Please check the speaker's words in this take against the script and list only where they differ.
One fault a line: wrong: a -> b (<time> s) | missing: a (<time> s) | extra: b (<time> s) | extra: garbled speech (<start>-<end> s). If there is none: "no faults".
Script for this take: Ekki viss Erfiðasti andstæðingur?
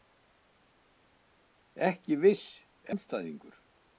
missing: Erfiðasti (2.5 s)